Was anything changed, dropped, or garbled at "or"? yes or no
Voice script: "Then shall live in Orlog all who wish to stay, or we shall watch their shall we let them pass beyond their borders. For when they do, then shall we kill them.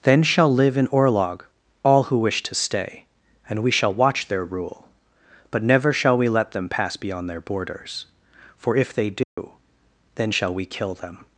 yes